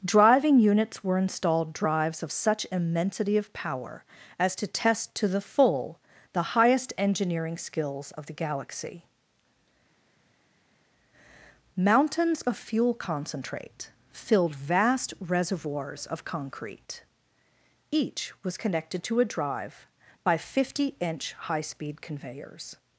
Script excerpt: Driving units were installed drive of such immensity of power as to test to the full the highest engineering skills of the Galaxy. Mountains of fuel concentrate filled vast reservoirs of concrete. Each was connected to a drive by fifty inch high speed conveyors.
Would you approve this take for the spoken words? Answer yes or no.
no